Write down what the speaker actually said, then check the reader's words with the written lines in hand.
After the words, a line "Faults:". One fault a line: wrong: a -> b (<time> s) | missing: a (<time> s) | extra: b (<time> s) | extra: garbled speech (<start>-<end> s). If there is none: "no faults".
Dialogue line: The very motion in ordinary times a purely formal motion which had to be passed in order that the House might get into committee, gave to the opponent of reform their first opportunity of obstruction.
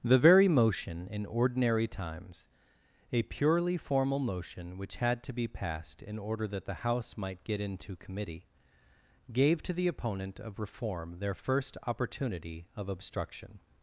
The very motion in ordinary times a purely formal motion which had to be passed in order that the House might get into committee, gave to the opponent of reform their first opportunity of obstruction.
Faults:
no faults